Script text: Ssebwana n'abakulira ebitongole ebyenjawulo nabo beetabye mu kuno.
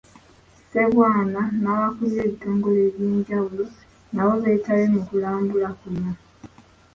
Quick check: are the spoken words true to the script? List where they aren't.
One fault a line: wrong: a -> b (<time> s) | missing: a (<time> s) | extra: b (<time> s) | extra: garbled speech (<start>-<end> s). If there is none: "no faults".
extra: kulambula (5.1 s)